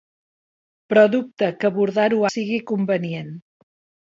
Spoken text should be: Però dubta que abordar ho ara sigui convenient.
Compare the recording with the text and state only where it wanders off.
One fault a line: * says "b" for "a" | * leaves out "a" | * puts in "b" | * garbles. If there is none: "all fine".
* leaves out "ara"